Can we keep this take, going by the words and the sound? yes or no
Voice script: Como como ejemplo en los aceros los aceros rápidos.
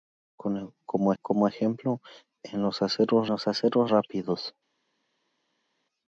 yes